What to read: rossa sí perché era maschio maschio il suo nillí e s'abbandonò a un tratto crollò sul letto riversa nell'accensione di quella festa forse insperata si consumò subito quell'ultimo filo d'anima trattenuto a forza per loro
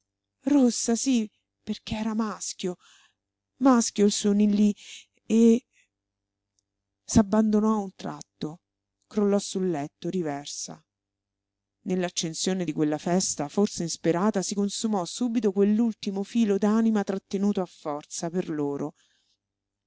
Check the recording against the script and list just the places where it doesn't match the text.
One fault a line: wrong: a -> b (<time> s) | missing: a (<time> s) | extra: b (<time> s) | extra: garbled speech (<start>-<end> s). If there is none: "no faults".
no faults